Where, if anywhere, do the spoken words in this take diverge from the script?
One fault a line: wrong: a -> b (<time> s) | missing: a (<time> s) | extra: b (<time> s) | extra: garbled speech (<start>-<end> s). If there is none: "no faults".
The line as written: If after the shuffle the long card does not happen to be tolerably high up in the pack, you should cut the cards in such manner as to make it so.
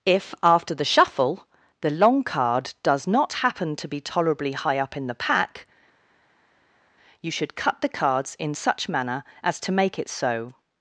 no faults